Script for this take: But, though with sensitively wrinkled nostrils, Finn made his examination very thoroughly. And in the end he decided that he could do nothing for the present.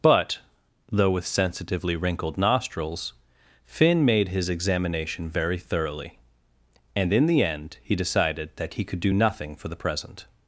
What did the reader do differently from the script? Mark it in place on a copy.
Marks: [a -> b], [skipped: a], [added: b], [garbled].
But, though with sensitively wrinkled nostrils, Finn made his examination very thoroughly. And in the end he decided that he could do nothing for the present.